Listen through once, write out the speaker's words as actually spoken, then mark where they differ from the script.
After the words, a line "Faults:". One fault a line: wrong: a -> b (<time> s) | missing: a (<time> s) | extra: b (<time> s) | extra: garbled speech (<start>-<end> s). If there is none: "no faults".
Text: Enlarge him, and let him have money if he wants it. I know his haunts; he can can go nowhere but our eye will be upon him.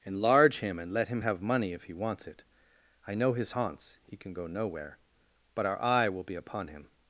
Enlarge him, and let him have money if he wants it. I know his haunts; he can go nowhere but our eye will be upon him.
Faults:
missing: can (4.3 s)